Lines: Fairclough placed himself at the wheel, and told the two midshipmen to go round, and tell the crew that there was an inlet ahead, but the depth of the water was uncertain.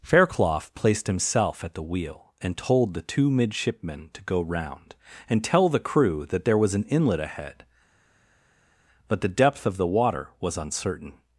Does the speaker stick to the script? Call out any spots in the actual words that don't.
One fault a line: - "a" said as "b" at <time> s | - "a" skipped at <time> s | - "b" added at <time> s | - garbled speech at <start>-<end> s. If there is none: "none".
none